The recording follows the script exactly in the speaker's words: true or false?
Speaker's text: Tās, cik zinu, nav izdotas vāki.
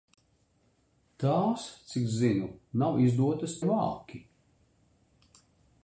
true